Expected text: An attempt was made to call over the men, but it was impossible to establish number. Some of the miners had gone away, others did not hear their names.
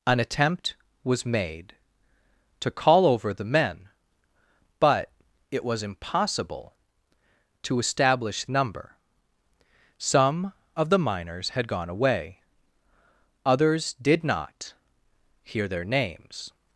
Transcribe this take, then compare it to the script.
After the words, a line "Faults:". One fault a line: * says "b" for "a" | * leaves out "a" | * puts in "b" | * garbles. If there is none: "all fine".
An attempt was made to call over the men, but it was impossible to establish number. Some of the miners had gone away, others did not hear their names.
Faults:
all fine